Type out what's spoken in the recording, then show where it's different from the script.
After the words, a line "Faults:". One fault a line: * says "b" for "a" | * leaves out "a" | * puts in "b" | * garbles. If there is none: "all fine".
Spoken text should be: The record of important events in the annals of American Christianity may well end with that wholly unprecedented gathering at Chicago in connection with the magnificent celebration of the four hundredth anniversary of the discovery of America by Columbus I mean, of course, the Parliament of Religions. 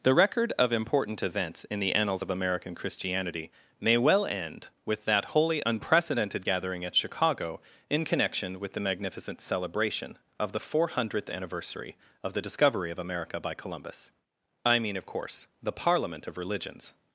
The record of important events in the annals of American Christianity may well end with that wholly unprecedented gathering at Chicago in connection with the magnificent celebration of the four hundredth anniversary of the discovery of America by Columbus I mean, of course, the Parliament of Religions.
Faults:
all fine